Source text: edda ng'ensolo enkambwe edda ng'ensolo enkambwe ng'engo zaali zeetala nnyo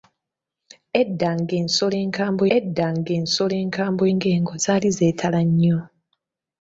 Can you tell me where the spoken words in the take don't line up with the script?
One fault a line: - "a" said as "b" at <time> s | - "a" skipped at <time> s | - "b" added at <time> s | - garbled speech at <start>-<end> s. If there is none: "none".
none